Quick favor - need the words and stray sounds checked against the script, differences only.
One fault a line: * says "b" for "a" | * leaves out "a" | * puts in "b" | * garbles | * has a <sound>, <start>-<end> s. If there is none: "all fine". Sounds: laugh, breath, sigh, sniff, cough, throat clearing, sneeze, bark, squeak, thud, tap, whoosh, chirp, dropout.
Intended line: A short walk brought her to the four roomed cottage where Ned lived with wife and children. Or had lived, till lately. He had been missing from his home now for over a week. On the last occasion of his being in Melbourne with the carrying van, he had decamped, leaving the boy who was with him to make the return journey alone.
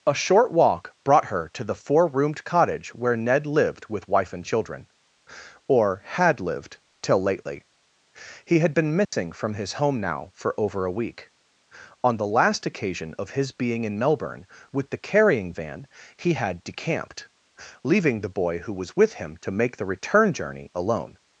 * has a dropout, 9.0-9.1 s